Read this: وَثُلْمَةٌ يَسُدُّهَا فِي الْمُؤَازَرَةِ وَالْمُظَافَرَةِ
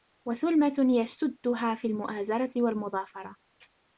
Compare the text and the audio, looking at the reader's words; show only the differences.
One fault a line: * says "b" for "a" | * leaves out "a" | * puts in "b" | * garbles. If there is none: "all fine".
all fine